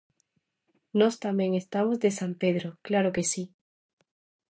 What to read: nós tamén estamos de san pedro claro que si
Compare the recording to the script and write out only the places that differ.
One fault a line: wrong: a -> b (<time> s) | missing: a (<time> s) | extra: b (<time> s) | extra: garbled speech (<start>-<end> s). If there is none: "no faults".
no faults